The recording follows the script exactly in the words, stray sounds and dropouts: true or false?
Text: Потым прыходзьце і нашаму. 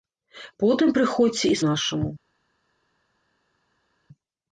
true